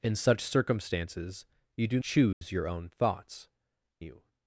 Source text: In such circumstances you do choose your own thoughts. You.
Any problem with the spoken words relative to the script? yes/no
no